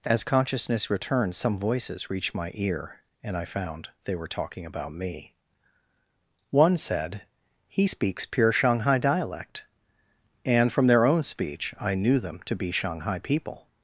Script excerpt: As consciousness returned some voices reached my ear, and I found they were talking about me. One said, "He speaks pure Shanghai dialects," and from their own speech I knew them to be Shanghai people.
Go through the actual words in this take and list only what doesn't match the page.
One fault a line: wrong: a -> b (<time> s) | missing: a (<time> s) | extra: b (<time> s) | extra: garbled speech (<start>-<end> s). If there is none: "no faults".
wrong: dialects -> dialect (9.0 s)